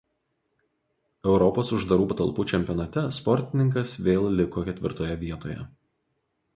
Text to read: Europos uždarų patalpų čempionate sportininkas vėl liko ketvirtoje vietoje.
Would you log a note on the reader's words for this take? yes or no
no